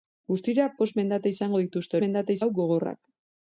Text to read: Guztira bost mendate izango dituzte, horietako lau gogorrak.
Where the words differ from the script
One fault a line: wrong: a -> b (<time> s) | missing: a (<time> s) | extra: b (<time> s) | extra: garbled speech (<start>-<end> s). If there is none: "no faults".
wrong: horietako -> mendate (2.0 s)